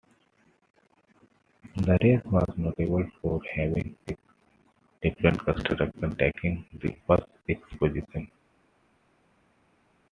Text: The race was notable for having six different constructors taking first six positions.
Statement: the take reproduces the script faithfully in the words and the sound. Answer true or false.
false